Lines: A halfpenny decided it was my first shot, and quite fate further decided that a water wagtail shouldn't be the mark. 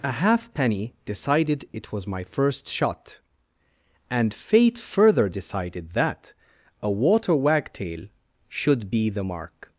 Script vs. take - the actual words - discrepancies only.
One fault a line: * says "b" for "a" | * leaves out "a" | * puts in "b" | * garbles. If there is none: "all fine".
* leaves out "quite"
* says "should" for "shouldn't"